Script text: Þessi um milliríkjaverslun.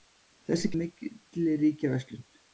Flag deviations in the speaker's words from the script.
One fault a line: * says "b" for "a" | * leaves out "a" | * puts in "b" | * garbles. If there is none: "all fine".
all fine